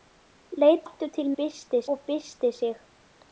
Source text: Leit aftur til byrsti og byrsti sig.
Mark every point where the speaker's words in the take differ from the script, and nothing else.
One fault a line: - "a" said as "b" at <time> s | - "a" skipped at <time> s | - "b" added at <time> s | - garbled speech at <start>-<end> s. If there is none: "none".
none